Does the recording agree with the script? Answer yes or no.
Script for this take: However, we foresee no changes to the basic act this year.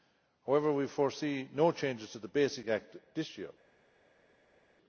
yes